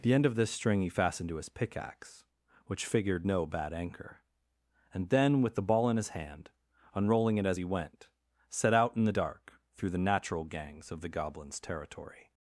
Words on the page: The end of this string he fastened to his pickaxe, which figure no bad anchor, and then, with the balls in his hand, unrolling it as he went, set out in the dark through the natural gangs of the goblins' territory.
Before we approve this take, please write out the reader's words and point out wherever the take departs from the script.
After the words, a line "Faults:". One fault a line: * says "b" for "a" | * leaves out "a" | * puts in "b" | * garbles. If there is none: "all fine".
The end of this string he fastened to his pickaxe, which figured no bad anchor, and then, with the ball in his hand, unrolling it as he went, set out in the dark through the natural gangs of the goblins' territory.
Faults:
* says "figured" for "figure"
* says "ball" for "balls"